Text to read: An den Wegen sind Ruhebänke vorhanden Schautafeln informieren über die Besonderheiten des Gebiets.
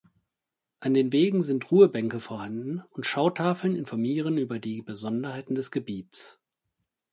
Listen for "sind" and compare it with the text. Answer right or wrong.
right